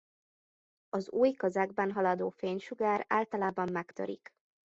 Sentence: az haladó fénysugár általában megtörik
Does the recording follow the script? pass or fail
fail